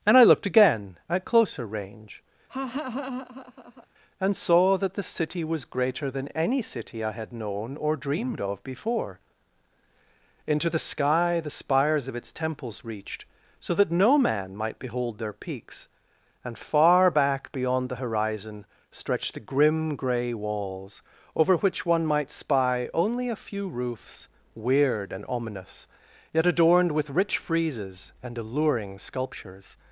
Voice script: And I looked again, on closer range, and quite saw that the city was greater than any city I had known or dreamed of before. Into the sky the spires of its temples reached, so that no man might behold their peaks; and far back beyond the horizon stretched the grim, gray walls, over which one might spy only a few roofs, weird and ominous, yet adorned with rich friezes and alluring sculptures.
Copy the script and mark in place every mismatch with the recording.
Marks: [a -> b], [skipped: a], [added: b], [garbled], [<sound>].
And I looked again, [on -> at] closer range, [laugh] and [skipped: quite] saw that the city was greater than any city I had known or dreamed of before. Into the sky the spires of its temples reached, so that no man might behold their peaks; and far back beyond the horizon stretched the grim, gray walls, over which one might spy only a few roofs, weird and ominous, yet adorned with rich friezes and alluring sculptures.